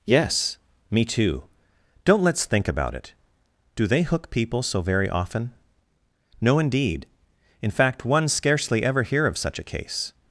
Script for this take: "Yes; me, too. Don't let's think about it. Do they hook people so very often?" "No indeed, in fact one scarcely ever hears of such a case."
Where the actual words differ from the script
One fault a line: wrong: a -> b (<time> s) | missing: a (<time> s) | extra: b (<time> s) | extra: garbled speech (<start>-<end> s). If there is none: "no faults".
wrong: hears -> hear (9.0 s)